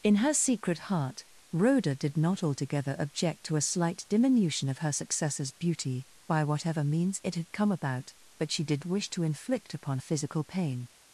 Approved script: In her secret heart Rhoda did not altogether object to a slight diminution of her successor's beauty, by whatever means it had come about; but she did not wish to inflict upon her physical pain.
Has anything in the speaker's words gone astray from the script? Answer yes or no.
yes